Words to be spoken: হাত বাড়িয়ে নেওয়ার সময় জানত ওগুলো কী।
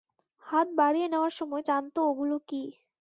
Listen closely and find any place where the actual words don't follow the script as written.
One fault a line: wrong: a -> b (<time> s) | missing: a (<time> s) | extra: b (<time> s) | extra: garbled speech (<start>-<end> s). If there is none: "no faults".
no faults